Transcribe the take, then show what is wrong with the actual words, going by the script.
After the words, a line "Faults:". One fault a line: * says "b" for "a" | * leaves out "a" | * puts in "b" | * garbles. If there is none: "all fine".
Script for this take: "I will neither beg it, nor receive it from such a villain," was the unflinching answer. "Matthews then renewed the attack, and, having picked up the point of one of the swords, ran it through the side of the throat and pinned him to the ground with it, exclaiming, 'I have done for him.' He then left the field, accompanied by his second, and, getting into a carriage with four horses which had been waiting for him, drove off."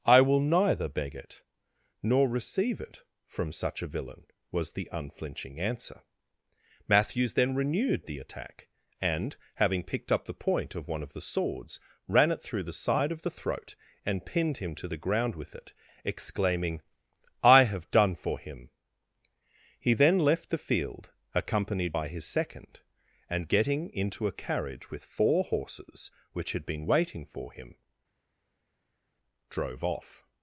"I will neither beg it, nor receive it from such a villain," was the unflinching answer. "Matthews then renewed the attack, and, having picked up the point of one of the swords, ran it through the side of the throat and pinned him to the ground with it, exclaiming, 'I have done for him.' He then left the field, accompanied by his second, and, getting into a carriage with four horses which had been waiting for him, drove off."
Faults:
all fine